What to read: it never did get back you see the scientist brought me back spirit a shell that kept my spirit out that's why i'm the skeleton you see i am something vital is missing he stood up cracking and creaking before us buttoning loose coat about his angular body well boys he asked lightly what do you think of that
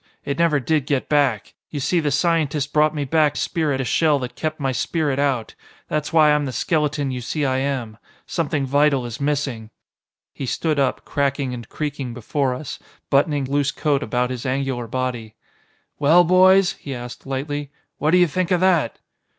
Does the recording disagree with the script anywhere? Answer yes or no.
no